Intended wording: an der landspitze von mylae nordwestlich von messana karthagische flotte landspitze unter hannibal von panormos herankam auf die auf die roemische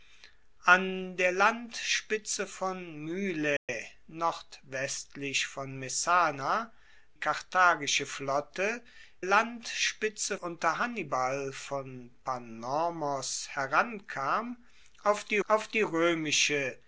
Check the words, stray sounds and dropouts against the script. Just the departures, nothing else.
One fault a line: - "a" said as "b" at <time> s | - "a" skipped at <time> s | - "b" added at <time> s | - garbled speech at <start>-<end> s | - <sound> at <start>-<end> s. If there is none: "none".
- dropout at 3.6-3.7 s